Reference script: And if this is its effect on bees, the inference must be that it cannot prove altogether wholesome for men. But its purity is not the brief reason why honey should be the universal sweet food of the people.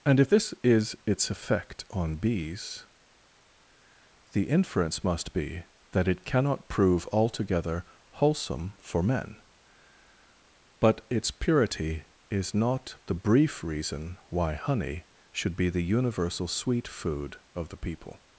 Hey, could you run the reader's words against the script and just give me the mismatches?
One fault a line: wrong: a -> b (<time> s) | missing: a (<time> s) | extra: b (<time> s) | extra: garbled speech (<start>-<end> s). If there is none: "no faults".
no faults